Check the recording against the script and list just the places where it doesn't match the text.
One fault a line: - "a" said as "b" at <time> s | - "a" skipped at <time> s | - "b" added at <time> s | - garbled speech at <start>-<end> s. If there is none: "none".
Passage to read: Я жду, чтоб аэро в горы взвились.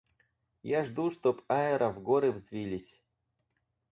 none